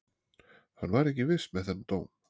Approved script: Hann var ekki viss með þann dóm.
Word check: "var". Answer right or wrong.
right